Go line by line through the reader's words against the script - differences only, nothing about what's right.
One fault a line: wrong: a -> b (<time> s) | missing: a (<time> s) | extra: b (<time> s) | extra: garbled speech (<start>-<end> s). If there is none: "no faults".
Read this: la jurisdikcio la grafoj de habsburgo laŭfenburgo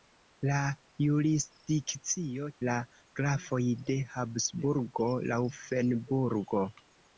no faults